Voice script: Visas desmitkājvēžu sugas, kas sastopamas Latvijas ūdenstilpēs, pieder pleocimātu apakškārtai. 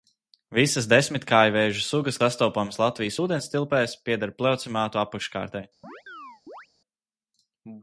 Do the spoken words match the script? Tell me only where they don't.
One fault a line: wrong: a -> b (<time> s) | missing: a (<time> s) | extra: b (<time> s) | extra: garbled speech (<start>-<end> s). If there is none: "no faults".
missing: kas (2.2 s)